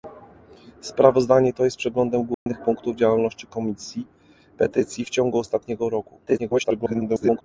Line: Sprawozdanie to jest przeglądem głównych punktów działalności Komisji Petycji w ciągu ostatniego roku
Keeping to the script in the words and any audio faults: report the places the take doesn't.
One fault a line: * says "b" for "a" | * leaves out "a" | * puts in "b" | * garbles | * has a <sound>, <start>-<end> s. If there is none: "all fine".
* has a dropout, 2.3-2.5 s
* garbles